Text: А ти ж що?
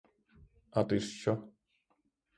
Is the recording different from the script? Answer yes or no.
no